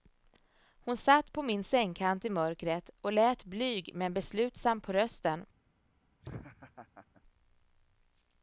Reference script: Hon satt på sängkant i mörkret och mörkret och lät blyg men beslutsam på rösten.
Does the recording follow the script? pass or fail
fail